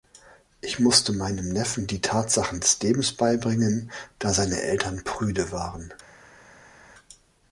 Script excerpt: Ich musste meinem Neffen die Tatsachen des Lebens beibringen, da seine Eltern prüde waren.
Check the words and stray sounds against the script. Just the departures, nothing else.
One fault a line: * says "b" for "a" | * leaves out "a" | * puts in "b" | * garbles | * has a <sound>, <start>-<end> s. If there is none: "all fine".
all fine